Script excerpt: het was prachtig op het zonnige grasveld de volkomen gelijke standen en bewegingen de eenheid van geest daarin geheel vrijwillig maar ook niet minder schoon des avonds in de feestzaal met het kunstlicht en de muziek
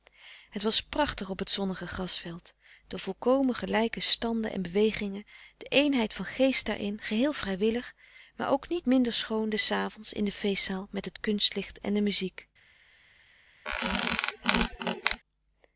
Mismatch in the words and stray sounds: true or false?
true